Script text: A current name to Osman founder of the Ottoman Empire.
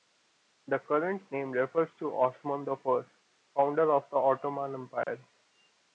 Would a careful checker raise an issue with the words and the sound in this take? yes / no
yes